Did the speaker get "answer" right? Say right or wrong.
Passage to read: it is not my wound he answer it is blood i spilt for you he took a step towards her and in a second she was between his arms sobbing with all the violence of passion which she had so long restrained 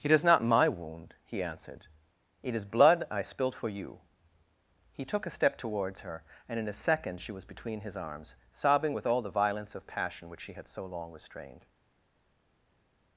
wrong